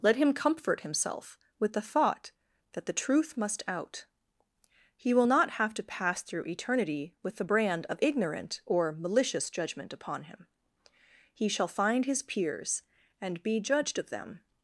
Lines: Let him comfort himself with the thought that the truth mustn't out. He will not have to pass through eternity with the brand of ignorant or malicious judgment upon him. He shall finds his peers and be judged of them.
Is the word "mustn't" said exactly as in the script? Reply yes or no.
no